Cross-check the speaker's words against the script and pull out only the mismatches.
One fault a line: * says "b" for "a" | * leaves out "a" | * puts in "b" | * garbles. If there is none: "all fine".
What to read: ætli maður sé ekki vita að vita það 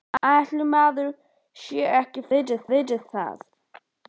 all fine